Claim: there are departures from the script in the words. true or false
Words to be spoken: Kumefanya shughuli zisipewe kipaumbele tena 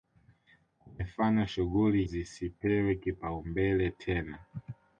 false